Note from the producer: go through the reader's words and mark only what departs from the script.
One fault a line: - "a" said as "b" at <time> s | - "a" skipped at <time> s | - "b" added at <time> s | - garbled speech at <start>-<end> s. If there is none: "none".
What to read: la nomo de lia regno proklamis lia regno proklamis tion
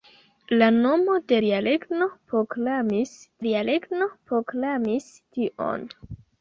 none